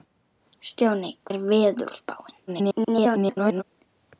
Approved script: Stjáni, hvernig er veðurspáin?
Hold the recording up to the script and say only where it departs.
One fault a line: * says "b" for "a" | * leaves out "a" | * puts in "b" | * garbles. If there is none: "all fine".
* leaves out "hvernig"
* garbles